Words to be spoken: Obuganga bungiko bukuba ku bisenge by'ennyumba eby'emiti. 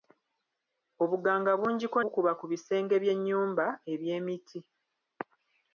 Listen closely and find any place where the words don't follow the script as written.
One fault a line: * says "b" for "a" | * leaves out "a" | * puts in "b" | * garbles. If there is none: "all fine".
all fine